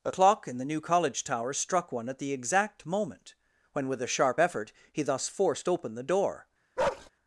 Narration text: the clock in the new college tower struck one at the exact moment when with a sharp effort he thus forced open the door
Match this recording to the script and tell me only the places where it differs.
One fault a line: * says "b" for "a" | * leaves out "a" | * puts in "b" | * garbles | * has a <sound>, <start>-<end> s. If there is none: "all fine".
* says "a" for "the"
* has a bark, 6.8-7.1 s